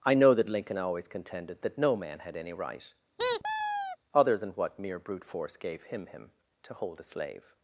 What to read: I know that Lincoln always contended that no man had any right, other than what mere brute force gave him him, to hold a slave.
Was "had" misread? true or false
false